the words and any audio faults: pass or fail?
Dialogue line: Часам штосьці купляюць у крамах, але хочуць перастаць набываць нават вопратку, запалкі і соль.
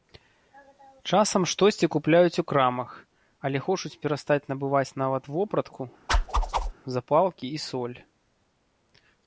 fail